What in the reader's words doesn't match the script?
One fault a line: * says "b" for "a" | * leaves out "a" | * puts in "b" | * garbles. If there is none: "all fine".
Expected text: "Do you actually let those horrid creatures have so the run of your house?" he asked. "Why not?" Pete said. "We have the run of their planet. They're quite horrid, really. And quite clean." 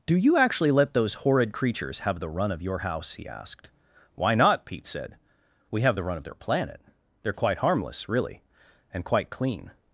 * leaves out "so"
* says "harmless" for "horrid"